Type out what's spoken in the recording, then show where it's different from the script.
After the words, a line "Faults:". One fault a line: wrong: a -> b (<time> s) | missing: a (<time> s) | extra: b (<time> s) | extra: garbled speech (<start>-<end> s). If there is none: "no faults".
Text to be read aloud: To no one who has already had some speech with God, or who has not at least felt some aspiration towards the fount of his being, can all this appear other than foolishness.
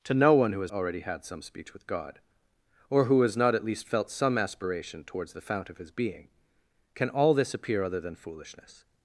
To no one who has already had some speech with God, or who has not at least felt some aspiration towards the fount of his being, can all this appear other than foolishness.
Faults:
no faults